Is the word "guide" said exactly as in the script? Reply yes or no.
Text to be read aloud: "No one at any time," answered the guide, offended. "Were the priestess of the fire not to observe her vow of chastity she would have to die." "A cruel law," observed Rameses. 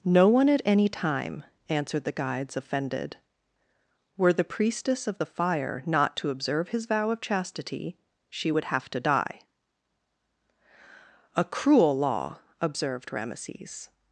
no